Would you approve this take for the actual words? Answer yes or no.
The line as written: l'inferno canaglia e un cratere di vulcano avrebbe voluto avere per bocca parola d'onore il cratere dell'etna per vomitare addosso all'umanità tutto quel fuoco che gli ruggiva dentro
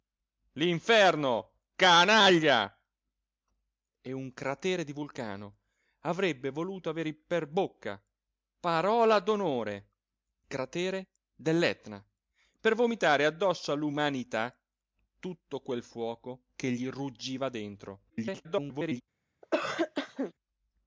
no